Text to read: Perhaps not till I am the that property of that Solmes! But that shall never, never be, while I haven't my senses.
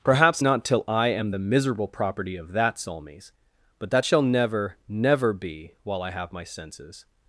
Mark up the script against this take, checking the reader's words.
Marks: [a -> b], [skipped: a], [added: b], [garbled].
Perhaps not till I am the [that -> miserable] property of that Solmes! But that shall never, never be, while I [haven't -> have] my senses.